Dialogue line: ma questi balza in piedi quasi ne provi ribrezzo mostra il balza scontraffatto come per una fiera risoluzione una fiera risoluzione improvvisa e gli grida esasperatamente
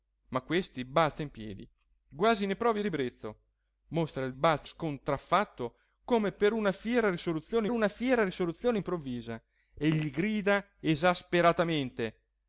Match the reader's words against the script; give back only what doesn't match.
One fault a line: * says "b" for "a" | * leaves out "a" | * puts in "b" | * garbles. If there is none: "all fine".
all fine